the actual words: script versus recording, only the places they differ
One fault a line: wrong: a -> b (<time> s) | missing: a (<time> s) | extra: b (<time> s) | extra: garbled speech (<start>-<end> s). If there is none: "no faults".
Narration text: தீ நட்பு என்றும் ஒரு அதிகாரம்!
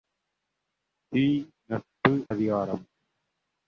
missing: என்றும் ஒரு (2.1 s)